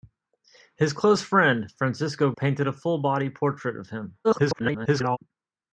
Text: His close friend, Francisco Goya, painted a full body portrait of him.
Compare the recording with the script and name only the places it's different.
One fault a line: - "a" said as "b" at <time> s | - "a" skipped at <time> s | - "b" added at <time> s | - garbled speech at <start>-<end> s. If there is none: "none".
- "Goya" skipped at 2.3 s
- garbled speech at 4.2-5.2 s